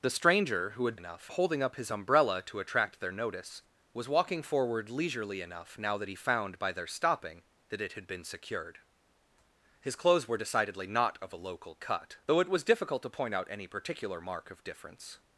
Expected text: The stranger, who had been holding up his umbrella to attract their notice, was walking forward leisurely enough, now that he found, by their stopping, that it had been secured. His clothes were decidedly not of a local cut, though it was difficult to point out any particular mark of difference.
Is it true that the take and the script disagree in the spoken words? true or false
true